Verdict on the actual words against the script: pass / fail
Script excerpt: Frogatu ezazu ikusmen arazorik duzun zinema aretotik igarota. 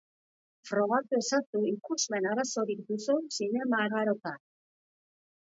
fail